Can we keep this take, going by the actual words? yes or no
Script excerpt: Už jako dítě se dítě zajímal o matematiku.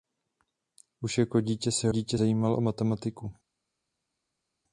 yes